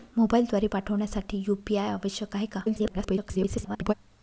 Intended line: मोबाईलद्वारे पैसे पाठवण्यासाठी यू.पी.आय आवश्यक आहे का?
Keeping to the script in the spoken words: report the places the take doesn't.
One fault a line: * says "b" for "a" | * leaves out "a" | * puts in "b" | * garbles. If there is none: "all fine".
* leaves out "पैसे"
* garbles